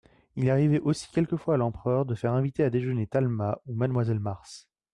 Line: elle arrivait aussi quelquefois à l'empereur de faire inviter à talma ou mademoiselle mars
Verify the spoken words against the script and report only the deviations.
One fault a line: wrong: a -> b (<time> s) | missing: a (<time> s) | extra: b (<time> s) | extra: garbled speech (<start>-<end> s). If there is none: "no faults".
wrong: elle -> il (0.3 s)
extra: déjeuner (2.7 s)